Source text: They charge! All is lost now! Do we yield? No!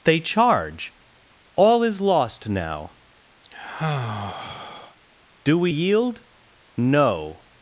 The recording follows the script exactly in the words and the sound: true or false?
false